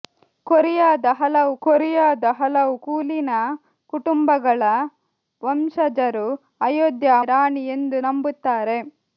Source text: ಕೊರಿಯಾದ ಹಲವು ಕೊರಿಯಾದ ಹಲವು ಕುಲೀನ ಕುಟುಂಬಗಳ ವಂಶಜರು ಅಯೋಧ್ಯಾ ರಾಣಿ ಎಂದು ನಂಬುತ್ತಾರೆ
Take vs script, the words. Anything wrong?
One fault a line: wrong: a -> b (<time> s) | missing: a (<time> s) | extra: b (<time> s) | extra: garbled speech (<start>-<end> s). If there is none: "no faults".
no faults